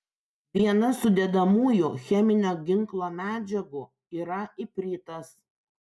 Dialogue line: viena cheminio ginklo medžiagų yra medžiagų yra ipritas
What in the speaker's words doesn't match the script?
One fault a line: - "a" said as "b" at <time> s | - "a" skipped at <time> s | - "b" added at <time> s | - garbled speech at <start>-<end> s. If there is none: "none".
- "sudedamųjų" added at 1.0 s
- "medžiagų yra" skipped at 4.4 s